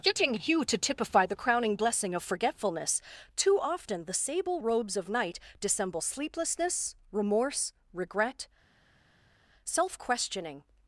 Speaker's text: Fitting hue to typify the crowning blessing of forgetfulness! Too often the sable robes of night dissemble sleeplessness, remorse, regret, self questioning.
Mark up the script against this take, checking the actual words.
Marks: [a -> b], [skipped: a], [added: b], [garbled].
[Fitting -> Getting] hue to typify the crowning blessing of forgetfulness! Too often the sable robes of night dissemble sleeplessness, remorse, regret, self questioning.